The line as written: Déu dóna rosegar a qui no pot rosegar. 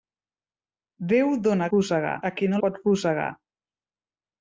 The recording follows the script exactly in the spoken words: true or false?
true